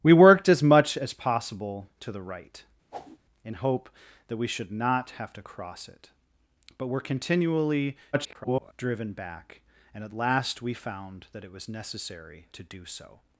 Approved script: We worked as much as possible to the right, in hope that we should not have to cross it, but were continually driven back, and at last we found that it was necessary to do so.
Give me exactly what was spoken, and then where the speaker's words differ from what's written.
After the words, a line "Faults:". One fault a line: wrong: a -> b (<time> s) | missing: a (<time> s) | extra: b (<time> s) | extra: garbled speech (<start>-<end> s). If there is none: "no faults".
We worked as much as possible to the right, in hope that we should not have to cross it, but were continually [garbled] driven back, and at last we found that it was necessary to do so.
Faults:
extra: garbled speech (8.1-8.7 s)